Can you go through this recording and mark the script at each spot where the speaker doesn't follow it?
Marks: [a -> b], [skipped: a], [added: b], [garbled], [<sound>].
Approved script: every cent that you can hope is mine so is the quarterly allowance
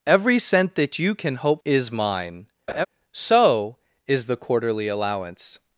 every cent that you can hope is mine [laugh] so is the quarterly allowance